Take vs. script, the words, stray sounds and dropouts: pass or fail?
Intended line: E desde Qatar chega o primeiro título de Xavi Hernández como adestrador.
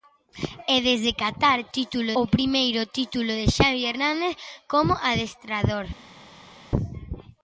fail